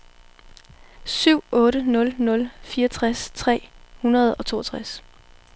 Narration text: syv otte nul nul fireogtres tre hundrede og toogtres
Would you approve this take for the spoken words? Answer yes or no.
yes